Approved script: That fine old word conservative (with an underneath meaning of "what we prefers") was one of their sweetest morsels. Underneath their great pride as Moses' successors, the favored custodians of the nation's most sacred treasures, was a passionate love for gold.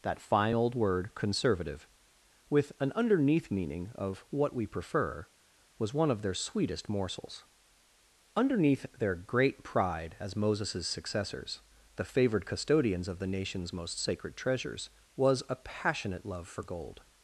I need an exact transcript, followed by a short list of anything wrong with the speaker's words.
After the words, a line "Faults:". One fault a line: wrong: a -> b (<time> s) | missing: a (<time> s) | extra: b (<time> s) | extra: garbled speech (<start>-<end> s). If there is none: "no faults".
That fine old word conservative (with an underneath meaning of "what we prefer") was one of their sweetest morsels. Underneath their great pride as Moses' successors, the favored custodians of the nation's most sacred treasures, was a passionate love for gold.
Faults:
wrong: prefers -> prefer (4.7 s)